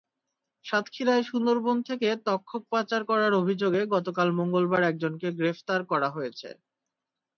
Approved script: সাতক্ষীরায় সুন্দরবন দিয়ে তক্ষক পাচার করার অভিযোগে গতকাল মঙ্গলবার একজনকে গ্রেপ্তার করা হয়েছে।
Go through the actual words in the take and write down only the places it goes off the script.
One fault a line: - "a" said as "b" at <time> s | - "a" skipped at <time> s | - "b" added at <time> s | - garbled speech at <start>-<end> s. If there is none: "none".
- "দিয়ে" said as "থেকে" at 1.9 s